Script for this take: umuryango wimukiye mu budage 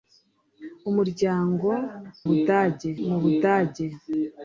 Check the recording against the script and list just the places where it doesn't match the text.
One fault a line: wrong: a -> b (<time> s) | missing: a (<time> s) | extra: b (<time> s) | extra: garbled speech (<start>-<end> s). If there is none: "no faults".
wrong: wimukiye -> budage (2.3 s)